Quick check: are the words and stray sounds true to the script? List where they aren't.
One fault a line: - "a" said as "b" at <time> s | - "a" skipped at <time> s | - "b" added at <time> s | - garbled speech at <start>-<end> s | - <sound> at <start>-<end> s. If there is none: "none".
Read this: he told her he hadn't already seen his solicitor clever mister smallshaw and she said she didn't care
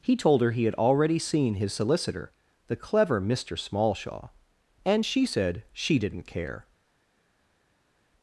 - "hadn't" said as "had" at 0.6 s
- "the" added at 2.7 s